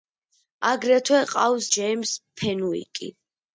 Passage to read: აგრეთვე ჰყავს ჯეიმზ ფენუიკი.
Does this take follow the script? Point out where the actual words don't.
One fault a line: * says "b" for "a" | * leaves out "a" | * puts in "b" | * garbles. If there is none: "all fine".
all fine